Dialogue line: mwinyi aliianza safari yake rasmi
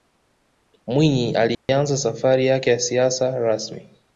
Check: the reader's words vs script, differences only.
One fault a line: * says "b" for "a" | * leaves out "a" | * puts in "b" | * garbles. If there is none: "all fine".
* puts in "ya siasa"